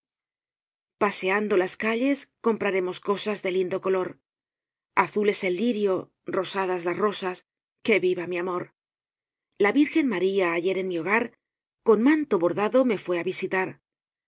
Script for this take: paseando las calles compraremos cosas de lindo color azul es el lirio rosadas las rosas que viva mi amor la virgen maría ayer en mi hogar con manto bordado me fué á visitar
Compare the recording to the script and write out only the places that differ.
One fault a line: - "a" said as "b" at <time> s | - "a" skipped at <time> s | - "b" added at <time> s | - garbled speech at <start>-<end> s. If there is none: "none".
none